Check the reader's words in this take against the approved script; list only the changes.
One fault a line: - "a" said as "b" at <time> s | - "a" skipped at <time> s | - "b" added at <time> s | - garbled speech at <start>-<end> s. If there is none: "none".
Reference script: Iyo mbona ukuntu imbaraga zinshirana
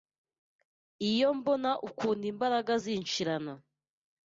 none